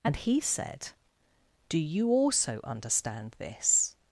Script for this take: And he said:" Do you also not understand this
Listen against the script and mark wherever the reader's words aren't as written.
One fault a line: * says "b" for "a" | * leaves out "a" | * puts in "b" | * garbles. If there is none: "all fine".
* leaves out "not"